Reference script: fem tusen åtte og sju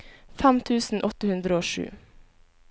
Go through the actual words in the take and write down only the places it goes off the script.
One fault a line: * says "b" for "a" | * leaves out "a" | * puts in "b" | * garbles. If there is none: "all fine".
* puts in "hundre"